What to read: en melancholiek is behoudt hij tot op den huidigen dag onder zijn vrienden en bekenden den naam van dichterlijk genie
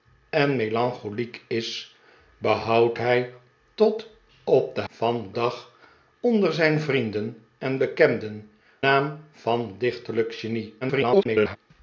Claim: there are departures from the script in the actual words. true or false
true